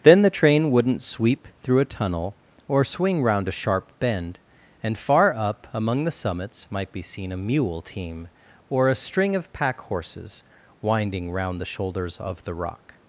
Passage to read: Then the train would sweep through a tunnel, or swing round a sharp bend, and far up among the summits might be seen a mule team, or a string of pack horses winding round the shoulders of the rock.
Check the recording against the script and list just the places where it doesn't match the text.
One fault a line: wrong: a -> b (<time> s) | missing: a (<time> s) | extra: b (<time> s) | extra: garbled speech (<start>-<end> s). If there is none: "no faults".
wrong: would -> wouldn't (0.7 s)